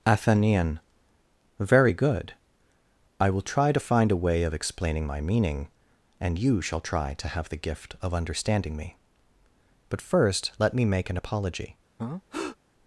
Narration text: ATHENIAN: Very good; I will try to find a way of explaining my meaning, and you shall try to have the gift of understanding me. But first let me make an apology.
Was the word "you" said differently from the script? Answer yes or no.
no